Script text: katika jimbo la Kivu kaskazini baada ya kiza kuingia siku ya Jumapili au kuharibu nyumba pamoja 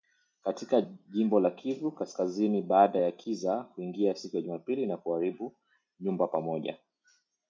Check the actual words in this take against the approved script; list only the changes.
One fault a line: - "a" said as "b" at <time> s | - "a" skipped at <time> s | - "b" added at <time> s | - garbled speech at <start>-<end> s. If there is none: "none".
- "au" said as "na" at 4.9 s